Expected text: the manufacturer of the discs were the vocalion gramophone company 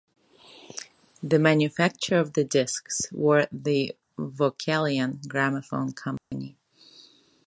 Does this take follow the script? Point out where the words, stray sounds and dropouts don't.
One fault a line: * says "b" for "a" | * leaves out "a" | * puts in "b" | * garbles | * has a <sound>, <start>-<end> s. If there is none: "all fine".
* has a dropout, 6.2-6.3 s